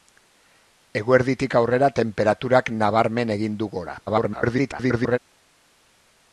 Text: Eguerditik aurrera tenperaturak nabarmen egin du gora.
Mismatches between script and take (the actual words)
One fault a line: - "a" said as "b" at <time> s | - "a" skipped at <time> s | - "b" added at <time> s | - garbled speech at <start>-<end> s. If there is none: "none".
- garbled speech at 4.1-5.2 s